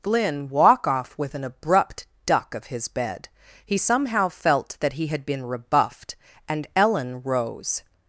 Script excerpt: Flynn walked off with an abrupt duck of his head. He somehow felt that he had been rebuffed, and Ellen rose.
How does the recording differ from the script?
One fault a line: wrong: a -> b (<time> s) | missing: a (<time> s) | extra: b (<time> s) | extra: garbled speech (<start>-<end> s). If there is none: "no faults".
wrong: walked -> walk (0.5 s)
wrong: head -> bed (2.9 s)